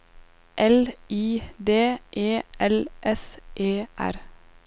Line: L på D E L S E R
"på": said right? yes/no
no